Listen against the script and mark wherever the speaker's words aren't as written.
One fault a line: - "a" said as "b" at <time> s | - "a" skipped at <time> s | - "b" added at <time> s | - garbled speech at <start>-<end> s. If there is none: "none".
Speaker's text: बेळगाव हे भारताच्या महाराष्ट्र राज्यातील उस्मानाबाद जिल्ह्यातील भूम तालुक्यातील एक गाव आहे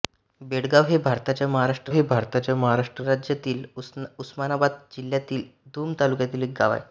- "हे भारताच्या महाराष्ट्र" added at 1.9 s